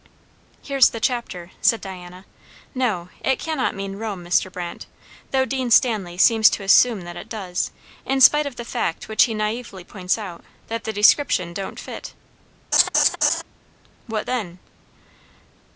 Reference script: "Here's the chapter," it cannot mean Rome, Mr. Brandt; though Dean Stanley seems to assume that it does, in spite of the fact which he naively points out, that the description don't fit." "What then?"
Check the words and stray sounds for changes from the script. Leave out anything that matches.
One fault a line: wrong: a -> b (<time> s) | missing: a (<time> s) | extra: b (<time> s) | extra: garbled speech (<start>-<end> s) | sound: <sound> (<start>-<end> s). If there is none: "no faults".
extra: said Diana No (1.6 s)
sound: laugh (12.7-13.4 s)